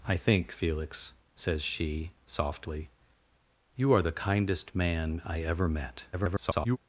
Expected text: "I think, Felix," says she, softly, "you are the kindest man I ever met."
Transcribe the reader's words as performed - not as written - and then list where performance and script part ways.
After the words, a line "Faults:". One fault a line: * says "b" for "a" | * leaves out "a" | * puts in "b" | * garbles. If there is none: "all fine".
"I think, Felix," says she, softly, "you are the kindest man I ever met." [garbled]
Faults:
* garbles